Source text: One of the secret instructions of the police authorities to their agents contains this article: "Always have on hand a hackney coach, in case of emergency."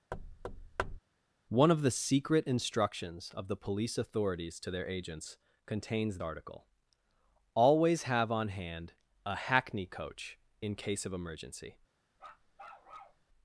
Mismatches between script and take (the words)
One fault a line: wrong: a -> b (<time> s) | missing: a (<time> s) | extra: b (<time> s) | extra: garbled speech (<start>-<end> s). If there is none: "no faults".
missing: this (6.2 s)